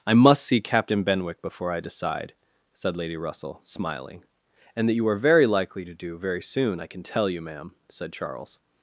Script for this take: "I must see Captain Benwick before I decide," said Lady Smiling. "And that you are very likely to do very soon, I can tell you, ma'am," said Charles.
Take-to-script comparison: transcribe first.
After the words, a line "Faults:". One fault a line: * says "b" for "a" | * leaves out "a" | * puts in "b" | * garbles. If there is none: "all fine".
"I must see Captain Benwick before I decide," said Lady Russell, smiling. "And that you are very likely to do very soon, I can tell you, ma'am," said Charles.
Faults:
* puts in "Russell"